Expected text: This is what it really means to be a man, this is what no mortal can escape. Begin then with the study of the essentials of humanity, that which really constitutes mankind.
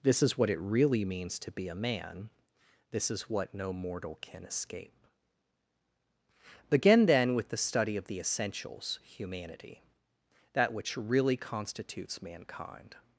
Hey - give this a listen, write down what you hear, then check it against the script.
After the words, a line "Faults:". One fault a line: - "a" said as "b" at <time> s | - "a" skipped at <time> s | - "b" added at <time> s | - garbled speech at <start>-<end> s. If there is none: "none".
This is what it really means to be a man, this is what no mortal can escape. Begin then with the study of the essentials humanity, that which really constitutes mankind.
Faults:
- "of" skipped at 9.0 s